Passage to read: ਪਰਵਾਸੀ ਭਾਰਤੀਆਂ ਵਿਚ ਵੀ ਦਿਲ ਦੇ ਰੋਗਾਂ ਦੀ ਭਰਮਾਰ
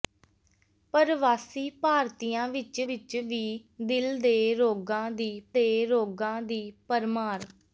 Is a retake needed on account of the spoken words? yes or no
yes